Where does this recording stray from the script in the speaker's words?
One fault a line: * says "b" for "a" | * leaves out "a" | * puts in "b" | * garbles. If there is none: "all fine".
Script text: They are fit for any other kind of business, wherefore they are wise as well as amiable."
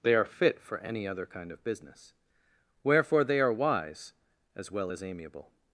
all fine